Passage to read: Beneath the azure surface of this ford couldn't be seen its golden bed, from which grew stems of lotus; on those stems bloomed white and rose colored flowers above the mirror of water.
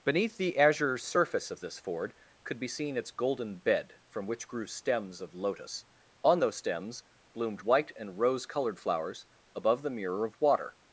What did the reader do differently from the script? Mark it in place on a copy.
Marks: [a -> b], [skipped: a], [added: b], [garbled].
Beneath the azure surface of this ford [couldn't -> could] be seen its golden bed, from which grew stems of lotus; on those stems bloomed white and rose colored flowers above the mirror of water.